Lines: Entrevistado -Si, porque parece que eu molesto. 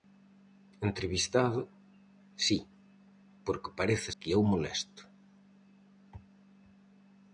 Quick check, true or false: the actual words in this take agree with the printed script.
true